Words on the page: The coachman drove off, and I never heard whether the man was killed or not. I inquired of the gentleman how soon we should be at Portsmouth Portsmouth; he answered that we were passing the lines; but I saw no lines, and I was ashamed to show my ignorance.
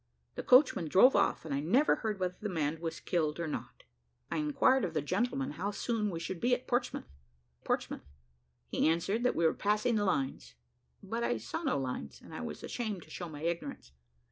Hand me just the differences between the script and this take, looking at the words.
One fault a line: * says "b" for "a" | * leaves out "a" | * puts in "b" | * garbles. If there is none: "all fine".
all fine